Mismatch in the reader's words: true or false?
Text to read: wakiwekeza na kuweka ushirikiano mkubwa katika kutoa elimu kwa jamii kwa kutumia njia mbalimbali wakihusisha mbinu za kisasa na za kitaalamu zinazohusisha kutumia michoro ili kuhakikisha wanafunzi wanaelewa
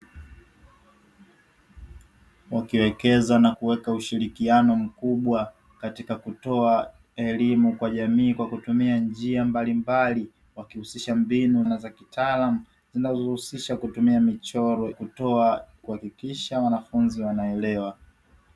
true